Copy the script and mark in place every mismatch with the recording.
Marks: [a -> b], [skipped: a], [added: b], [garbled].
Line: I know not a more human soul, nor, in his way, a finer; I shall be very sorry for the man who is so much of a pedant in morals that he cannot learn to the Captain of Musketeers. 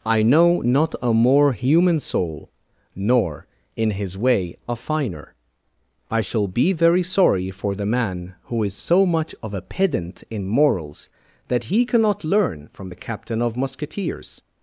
I know not a more human soul, nor, in his way, a finer; I shall be very sorry for the man who is so much of a pedant in morals that he cannot learn [to -> from] the Captain of Musketeers.